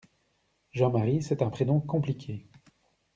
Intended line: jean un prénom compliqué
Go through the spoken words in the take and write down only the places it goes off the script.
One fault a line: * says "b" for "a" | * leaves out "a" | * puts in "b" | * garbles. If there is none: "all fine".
* puts in "marie c'est"